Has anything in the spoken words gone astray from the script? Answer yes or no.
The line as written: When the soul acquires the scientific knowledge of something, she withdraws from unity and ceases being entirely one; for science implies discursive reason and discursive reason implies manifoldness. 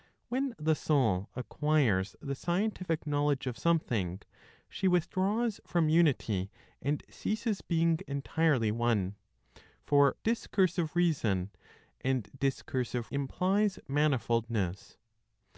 yes